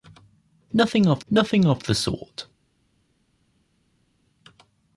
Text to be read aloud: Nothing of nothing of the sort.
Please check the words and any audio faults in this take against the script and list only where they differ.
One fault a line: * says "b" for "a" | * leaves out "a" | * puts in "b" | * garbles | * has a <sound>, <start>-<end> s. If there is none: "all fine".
all fine